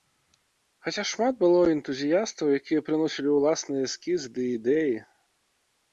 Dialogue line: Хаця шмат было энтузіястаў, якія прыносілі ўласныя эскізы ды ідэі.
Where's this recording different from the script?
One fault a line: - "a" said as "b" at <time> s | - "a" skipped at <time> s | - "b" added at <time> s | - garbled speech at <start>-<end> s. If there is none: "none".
none